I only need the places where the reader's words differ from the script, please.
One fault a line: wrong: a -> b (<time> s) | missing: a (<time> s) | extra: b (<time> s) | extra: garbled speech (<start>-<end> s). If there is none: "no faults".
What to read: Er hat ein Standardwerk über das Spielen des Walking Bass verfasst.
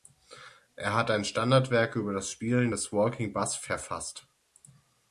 no faults